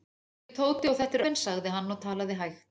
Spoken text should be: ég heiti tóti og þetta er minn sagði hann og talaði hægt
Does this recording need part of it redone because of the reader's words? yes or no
no